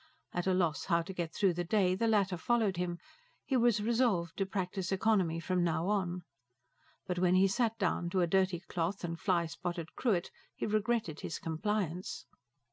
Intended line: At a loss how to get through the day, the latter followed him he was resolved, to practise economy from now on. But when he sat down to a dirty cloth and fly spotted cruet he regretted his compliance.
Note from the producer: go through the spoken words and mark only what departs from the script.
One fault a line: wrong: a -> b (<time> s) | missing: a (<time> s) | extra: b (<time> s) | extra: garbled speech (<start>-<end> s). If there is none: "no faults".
no faults